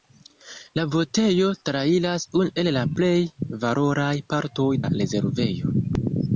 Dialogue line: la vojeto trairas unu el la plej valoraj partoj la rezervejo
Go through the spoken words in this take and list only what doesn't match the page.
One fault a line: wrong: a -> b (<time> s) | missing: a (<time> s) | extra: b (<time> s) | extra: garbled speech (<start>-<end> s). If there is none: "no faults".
no faults